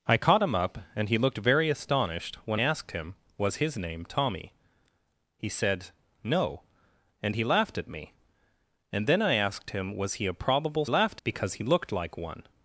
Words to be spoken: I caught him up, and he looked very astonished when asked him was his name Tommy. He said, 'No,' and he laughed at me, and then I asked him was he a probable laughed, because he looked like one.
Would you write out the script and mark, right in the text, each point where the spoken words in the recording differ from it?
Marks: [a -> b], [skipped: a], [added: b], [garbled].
I caught him up, and he looked very astonished when asked him was his name Tommy. He said, 'No,' and he laughed at me, and then I asked him was he a probable laughed, because he looked like one.